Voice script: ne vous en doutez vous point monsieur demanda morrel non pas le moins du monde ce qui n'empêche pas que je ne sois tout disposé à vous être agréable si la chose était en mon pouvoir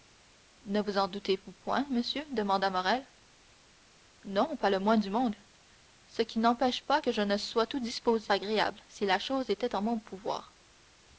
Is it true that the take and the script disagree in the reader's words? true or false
true